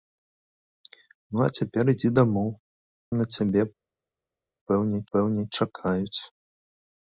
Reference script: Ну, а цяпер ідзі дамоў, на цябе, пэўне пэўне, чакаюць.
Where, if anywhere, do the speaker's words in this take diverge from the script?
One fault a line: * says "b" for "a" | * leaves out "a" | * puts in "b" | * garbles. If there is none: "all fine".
all fine